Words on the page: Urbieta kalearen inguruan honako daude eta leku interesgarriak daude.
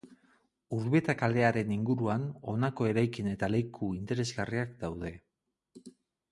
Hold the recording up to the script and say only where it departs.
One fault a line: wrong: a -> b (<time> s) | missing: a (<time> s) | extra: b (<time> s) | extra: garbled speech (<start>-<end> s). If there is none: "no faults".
wrong: daude -> eraikin (2.9 s)